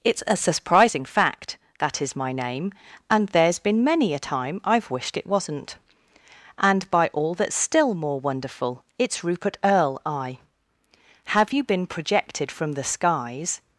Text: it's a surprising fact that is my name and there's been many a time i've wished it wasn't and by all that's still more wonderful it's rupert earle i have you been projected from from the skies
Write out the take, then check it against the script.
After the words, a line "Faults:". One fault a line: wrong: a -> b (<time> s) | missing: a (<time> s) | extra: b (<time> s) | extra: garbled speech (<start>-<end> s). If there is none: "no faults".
it's a surprising fact that is my name and there's been many a time i've wished it wasn't and by all that's still more wonderful it's rupert earle i have you been projected from the skies
Faults:
missing: from (12.7 s)